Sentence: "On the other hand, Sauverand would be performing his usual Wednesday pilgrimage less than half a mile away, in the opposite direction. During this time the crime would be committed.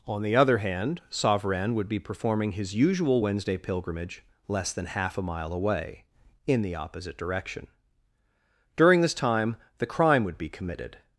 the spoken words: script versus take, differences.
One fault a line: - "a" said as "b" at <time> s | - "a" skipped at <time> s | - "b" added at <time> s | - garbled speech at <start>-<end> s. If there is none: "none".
none